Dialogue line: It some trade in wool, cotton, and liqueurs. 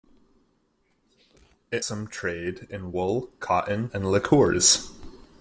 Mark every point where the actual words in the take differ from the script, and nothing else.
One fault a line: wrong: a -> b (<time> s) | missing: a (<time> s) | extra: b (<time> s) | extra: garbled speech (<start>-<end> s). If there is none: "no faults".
no faults